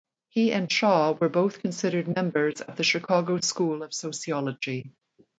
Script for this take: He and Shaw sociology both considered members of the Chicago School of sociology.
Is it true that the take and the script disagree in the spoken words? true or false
true